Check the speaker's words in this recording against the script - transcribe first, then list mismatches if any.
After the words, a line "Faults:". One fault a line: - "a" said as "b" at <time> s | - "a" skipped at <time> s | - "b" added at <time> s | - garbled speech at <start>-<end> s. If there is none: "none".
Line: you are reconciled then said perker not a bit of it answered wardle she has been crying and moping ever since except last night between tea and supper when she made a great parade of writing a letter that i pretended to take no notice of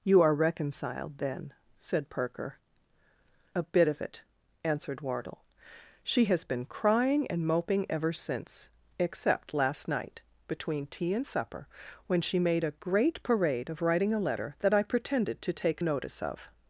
you are reconciled then said perker a bit of it answered wardle she has been crying and moping ever since except last night between tea and supper when she made a great parade of writing a letter that i pretended to take notice of
Faults:
- "not" skipped at 2.6 s
- "no" skipped at 15.8 s